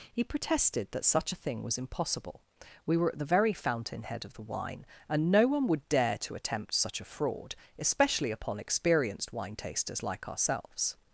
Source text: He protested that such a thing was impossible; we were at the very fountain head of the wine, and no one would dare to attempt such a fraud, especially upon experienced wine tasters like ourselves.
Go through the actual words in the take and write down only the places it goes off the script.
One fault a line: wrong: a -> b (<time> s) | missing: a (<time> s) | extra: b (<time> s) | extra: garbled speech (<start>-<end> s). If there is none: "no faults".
no faults